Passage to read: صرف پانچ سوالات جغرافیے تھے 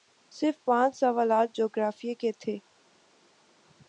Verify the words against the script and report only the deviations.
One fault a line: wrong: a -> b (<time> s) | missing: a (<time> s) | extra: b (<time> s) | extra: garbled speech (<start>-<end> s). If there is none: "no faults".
extra: کے (2.1 s)